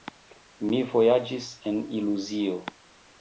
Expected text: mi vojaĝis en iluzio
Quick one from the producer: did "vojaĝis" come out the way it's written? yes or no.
yes